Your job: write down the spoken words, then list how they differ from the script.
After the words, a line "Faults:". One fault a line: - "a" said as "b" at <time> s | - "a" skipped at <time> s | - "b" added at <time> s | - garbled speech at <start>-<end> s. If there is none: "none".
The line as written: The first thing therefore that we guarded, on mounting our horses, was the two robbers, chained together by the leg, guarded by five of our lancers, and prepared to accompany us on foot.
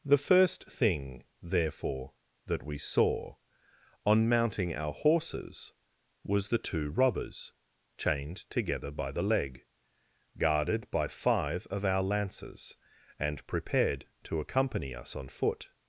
The first thing therefore that we saw, on mounting our horses, was the two robbers, chained together by the leg, guarded by five of our lancers, and prepared to accompany us on foot.
Faults:
- "guarded" said as "saw" at 2.8 s